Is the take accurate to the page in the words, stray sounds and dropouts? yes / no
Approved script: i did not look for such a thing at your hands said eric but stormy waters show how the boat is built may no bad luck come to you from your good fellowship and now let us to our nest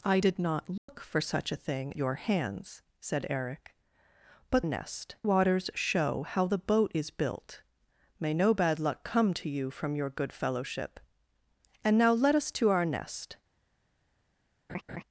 no